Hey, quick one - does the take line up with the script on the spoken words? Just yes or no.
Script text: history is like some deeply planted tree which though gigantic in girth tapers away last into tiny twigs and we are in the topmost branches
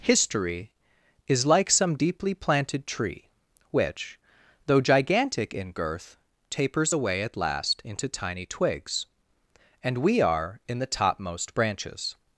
no